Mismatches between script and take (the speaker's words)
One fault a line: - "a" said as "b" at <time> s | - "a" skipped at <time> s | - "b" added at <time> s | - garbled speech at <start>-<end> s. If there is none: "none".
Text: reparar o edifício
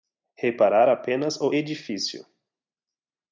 - "apenas" added at 0.9 s